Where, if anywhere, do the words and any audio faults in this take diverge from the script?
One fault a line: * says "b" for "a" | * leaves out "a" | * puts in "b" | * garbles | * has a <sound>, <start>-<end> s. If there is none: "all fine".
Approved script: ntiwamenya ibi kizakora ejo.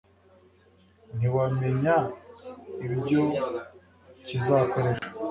* says "ibyo" for "ibi"
* has a dropout, 5.0-5.0 s